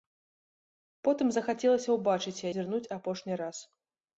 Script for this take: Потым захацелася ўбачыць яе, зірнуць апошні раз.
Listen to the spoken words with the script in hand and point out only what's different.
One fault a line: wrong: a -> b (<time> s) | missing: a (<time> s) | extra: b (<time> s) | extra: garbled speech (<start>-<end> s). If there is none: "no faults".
missing: яе (2.5 s)